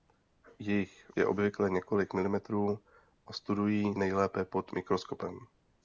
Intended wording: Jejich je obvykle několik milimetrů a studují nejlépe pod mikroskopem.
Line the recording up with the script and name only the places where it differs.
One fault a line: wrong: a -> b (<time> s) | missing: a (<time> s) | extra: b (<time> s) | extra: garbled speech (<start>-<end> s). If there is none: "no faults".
no faults